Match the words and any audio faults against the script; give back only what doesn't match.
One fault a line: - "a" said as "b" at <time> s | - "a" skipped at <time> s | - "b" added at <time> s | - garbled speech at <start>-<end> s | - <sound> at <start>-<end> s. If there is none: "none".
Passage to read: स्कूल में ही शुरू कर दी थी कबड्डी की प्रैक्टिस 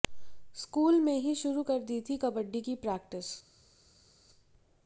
none